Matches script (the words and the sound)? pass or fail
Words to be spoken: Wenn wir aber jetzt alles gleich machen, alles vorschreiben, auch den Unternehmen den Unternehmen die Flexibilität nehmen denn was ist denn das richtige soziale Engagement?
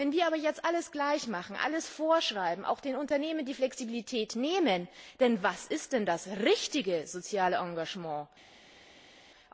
fail